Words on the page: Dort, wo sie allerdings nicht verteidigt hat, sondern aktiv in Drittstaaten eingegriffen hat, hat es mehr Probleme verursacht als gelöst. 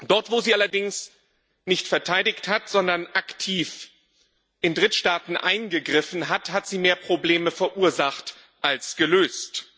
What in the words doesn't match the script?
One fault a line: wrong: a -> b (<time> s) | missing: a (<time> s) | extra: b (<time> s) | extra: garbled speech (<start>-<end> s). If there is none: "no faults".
wrong: es -> sie (6.7 s)